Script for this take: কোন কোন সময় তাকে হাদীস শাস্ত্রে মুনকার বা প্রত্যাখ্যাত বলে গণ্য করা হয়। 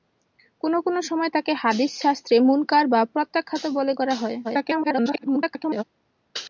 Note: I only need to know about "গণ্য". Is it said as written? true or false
false